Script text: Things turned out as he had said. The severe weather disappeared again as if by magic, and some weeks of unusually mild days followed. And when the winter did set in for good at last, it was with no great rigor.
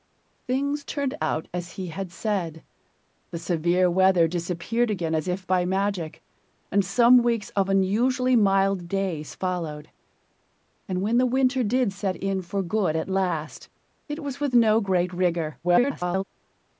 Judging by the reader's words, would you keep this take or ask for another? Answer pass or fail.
fail